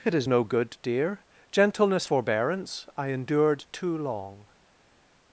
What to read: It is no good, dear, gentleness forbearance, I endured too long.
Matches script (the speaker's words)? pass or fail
pass